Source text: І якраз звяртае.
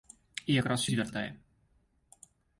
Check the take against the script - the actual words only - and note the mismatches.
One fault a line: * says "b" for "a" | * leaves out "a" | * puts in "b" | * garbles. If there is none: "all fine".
all fine